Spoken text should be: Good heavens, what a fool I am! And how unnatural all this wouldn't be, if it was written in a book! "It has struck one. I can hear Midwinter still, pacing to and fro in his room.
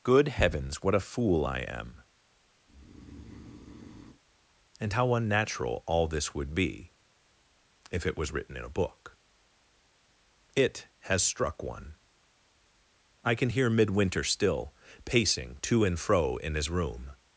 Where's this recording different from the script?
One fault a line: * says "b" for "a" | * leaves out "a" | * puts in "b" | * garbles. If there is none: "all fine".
* says "would" for "wouldn't"